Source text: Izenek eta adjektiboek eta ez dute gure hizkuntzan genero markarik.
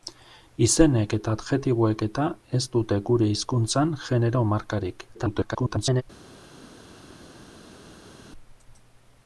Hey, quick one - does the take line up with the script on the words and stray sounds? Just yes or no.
no